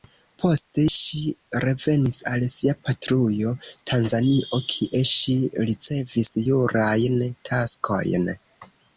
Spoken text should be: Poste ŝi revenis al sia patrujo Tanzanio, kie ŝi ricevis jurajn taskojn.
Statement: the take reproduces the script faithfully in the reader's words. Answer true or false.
true